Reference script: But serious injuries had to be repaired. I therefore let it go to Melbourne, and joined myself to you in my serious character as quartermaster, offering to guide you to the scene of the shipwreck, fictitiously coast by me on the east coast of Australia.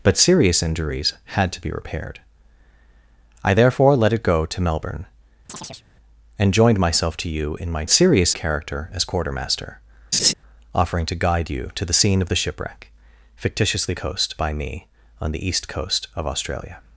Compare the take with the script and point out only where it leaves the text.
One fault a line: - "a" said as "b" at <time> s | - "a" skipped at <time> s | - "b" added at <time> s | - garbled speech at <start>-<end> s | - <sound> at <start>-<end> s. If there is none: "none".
- chirp at 5.5-5.8 s
- laugh at 10.1-10.3 s